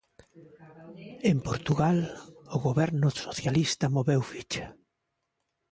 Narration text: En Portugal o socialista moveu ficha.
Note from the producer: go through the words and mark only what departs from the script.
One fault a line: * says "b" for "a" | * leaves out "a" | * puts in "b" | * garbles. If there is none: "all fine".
* puts in "goberno"